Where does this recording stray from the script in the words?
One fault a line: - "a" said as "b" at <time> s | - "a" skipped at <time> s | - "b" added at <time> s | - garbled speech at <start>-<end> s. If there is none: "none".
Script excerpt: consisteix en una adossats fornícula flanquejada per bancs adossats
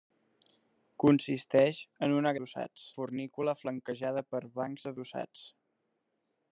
none